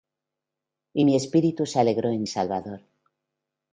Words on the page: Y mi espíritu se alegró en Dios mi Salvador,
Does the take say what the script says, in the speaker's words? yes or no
no